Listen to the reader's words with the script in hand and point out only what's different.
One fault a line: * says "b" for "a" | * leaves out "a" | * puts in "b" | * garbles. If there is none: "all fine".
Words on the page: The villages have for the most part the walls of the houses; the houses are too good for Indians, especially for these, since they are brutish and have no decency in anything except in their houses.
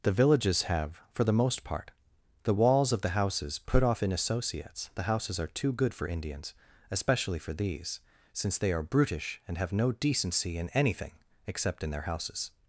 * puts in "put off in associates"